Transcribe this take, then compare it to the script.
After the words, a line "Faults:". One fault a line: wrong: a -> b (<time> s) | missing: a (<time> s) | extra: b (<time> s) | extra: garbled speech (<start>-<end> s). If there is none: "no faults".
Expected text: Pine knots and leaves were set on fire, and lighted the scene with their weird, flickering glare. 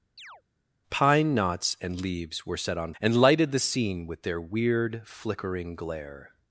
Pine knots and leaves were set on and lighted the scene with their weird, flickering glare.
Faults:
missing: fire (2.9 s)